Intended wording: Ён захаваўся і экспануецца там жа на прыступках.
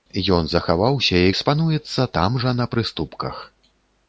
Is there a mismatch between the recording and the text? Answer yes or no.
no